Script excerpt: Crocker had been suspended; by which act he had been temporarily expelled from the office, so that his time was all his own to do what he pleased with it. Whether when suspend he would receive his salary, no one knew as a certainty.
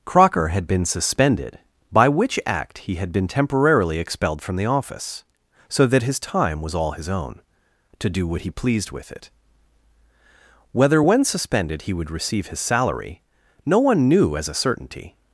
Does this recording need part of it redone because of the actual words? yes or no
yes